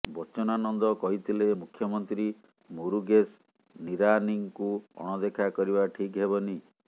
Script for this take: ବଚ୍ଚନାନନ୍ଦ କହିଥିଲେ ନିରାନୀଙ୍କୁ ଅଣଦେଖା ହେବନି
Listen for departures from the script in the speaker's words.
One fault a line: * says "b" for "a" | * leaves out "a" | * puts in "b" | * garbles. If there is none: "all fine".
* puts in "ମୁଖ୍ୟମନ୍ତ୍ରୀ ମୁରୁଗେଶ"
* puts in "କରିବା ଠିକ୍"